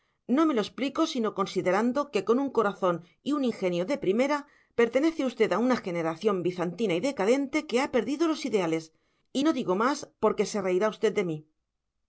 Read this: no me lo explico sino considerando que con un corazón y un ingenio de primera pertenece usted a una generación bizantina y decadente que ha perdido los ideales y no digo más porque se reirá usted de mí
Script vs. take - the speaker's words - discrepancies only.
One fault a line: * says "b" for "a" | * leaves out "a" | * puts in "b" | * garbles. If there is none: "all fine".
all fine